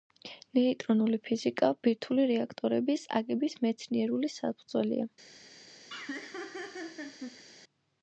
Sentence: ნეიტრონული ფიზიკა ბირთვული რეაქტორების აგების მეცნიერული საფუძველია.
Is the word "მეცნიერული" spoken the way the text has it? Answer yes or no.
yes